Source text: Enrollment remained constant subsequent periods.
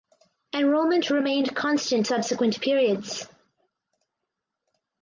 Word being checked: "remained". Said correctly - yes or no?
yes